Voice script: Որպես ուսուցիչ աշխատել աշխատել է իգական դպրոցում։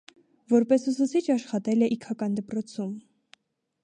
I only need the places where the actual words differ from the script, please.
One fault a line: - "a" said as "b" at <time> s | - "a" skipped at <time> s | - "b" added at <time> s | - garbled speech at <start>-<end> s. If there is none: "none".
- "աշխատել" skipped at 1.9 s